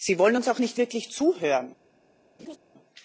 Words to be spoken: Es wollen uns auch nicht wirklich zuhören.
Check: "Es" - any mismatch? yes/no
yes